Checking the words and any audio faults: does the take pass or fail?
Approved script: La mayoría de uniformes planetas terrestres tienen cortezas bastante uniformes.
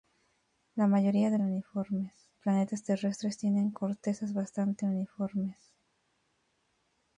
pass